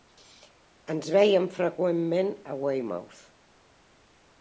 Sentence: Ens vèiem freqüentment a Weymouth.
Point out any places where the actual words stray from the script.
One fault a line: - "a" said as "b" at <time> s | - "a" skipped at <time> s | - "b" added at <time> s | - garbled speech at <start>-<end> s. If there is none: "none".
none